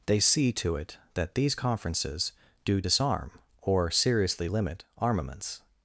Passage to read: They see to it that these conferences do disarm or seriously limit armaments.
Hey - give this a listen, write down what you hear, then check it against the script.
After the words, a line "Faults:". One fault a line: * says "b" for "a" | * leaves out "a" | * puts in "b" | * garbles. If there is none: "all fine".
They see to it that these conferences do disarm or seriously limit armaments.
Faults:
all fine